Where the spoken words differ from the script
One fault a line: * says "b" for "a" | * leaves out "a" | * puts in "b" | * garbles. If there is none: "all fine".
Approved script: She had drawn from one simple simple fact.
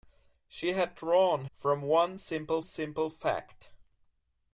all fine